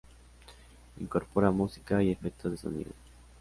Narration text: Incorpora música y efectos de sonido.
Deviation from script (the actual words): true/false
false